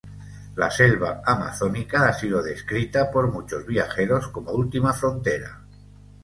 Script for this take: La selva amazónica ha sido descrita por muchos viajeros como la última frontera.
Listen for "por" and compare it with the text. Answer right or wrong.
right